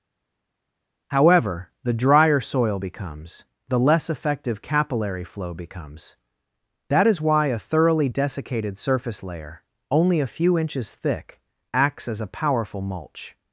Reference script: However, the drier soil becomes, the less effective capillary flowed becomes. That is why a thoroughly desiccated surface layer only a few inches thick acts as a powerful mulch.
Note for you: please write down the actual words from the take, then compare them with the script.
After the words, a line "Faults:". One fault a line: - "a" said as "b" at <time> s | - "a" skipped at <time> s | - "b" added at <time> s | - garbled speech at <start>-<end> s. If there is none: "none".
However, the drier soil becomes, the less effective capillary flow becomes. That is why a thoroughly desiccated surface layer only a few inches thick acts as a powerful mulch.
Faults:
- "flowed" said as "flow" at 5.2 s